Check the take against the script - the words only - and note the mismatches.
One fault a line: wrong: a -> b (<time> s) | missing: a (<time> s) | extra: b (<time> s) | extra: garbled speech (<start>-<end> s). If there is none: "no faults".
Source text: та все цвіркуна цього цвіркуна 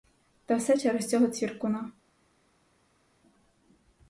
wrong: цвіркуна -> через (0.8 s)